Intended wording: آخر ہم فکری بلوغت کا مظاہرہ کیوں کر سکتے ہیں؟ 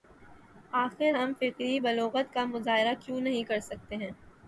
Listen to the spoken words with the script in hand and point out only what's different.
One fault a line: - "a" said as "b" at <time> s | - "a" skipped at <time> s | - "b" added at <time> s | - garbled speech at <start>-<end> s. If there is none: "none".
- "نہیں" added at 3.2 s